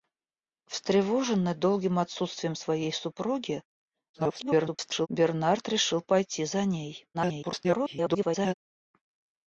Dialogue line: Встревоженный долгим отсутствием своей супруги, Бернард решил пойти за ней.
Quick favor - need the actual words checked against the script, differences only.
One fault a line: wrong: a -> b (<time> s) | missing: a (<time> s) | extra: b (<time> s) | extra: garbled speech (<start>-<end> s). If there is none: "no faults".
extra: garbled speech (4.1-5.1 s)
extra: garbled speech (7.1-8.5 s)